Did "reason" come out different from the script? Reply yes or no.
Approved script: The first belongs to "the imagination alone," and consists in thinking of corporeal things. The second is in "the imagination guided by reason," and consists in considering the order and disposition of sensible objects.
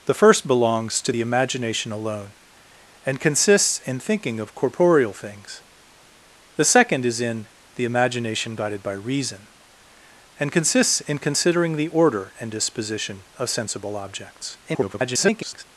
no